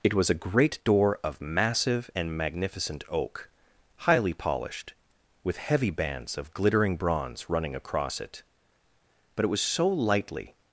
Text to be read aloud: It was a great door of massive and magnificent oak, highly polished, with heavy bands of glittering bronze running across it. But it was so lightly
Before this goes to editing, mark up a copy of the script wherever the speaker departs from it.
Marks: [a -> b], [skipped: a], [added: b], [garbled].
It was a great door of massive and magnificent oak, highly polished, with heavy bands of glittering bronze running across it. But it was so lightly